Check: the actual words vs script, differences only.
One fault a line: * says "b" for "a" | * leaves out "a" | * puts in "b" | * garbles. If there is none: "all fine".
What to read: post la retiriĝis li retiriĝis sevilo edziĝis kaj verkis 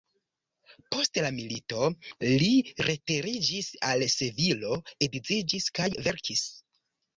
* says "milito" for "retiriĝis"
* puts in "al"